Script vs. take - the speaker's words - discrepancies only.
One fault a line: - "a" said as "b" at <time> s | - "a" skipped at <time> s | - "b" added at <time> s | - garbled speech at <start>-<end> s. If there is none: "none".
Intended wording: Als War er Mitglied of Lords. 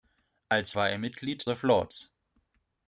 none